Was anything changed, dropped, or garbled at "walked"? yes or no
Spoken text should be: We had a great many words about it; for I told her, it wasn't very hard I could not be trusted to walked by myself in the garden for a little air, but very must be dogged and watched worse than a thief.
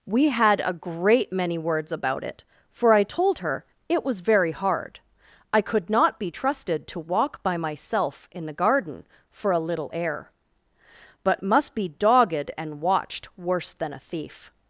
yes